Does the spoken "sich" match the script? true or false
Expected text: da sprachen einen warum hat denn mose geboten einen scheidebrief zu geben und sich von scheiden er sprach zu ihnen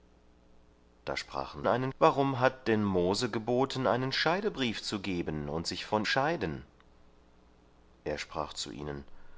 true